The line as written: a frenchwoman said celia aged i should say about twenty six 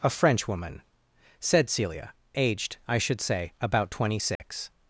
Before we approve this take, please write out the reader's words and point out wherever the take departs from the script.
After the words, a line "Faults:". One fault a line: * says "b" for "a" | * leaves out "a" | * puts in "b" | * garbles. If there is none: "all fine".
a frenchwoman said celia aged i should say about twenty six
Faults:
all fine